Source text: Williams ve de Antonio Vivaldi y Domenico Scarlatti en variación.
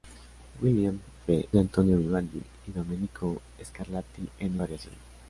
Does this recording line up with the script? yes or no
yes